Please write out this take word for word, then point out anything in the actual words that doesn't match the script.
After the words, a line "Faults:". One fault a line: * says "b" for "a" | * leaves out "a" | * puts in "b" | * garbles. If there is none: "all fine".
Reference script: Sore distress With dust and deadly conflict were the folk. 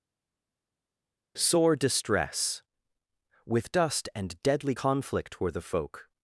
Sore distress With dust and deadly conflict were the folk.
Faults:
all fine